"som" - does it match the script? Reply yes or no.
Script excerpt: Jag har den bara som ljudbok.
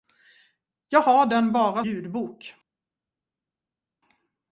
no